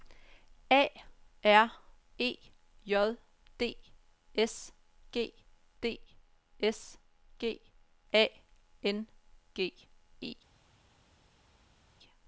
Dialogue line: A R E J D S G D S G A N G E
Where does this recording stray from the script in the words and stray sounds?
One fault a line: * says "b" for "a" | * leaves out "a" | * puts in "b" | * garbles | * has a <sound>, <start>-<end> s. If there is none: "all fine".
all fine